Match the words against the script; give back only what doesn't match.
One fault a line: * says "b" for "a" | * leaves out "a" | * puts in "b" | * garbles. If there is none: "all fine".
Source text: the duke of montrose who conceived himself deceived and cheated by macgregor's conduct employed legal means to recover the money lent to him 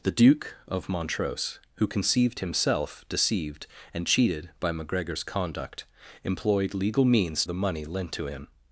* leaves out "to recover"